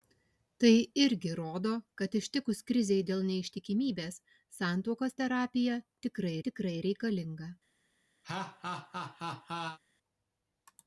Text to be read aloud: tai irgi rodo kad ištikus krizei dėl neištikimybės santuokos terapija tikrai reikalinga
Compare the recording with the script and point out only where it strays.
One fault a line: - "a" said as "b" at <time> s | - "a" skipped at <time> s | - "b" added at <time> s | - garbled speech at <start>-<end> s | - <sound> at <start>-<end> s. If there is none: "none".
- "tikrai" added at 6.5 s
- laugh at 8.2-9.8 s